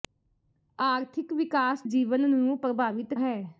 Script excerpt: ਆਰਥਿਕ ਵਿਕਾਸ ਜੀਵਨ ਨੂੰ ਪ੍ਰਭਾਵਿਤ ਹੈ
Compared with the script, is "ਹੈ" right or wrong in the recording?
right